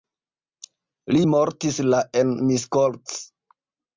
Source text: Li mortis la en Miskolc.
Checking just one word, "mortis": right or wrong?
right